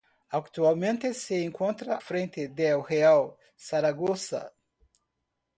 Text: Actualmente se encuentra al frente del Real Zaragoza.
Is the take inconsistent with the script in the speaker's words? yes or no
yes